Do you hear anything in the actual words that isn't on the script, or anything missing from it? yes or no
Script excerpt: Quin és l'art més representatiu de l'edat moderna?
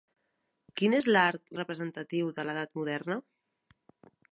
yes